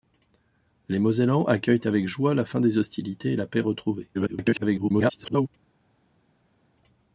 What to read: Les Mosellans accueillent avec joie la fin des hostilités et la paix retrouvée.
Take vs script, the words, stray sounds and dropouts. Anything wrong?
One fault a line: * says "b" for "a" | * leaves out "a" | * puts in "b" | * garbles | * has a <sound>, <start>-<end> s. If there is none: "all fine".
* garbles